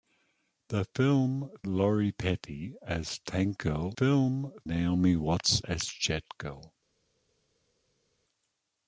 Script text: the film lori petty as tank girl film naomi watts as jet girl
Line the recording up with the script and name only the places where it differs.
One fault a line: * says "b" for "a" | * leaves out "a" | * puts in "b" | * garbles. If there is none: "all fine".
all fine